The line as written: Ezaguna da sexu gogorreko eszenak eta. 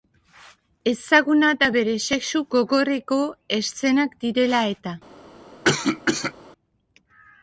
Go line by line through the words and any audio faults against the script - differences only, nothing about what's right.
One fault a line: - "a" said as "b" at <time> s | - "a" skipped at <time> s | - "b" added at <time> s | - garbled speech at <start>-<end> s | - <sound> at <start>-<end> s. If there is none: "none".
- "bere" added at 1.7 s
- "direla" added at 4.3 s
- cough at 5.7-6.3 s